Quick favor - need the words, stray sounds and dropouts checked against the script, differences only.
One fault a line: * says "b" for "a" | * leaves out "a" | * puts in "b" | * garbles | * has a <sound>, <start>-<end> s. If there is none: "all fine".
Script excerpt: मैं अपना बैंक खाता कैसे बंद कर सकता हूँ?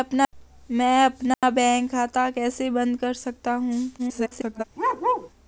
* has a dropout, 1.3-1.4 s
* garbles
* has a bark, 4.8-5.3 s